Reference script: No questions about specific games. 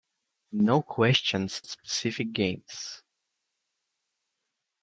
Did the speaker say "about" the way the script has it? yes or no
no